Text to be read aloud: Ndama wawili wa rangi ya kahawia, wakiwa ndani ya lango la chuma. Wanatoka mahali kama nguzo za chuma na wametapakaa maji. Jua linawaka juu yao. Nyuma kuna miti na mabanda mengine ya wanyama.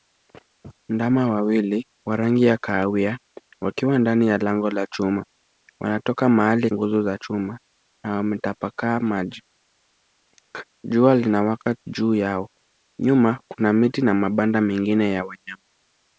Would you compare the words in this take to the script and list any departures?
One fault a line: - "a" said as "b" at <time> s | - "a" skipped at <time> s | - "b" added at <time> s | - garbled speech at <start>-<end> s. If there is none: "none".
- "kama" skipped at 6.7 s